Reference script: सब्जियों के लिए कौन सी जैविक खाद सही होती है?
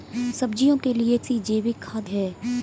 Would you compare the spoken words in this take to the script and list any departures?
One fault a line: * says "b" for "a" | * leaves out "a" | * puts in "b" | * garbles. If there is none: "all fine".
* leaves out "कौन"
* leaves out "सही होती"